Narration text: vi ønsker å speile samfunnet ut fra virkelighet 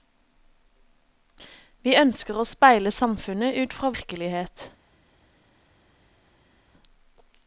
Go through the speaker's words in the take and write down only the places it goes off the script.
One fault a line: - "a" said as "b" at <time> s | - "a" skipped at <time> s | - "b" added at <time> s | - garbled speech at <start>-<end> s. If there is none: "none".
none